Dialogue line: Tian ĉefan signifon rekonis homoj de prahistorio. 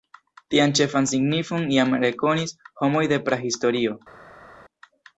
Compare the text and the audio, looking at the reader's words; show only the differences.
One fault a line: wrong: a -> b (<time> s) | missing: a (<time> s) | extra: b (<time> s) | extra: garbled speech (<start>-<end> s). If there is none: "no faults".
extra: jam (1.8 s)